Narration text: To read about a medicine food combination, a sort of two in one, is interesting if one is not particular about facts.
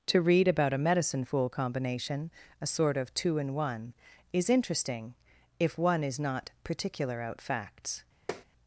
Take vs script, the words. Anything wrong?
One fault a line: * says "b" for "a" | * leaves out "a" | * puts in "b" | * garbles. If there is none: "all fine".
* says "fool" for "food"
* says "out" for "about"